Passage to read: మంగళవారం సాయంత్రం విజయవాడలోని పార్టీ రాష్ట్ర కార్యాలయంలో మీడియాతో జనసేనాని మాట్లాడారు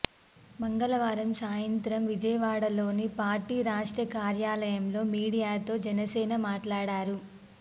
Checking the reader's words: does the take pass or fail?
pass